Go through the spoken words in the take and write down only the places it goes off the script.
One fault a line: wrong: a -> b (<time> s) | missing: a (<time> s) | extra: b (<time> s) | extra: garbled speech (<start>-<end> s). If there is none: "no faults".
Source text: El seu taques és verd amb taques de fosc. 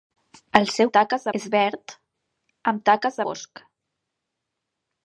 no faults